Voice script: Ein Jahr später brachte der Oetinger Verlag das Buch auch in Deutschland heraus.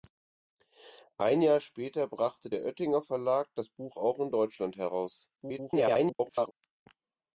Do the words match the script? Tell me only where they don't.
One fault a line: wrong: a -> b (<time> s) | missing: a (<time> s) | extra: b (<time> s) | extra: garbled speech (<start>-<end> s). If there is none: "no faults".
extra: garbled speech (5.4-6.5 s)